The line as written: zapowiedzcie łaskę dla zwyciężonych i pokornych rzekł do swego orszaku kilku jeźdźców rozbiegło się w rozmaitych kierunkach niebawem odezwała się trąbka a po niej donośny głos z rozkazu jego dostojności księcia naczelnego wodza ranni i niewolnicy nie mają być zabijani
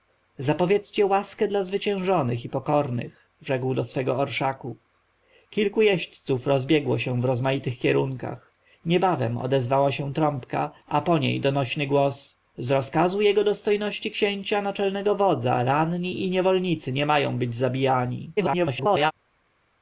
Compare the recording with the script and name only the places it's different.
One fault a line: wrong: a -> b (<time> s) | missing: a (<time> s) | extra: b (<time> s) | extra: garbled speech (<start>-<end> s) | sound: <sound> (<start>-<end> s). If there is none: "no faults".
extra: garbled speech (18.4-19.1 s)